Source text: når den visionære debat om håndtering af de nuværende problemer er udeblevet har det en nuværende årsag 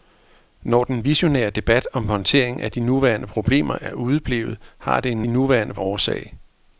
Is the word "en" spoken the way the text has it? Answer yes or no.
yes